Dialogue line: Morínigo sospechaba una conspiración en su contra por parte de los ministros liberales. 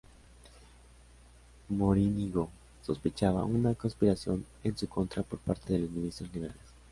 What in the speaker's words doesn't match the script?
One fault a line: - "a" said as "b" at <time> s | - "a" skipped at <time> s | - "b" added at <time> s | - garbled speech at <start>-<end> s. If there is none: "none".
none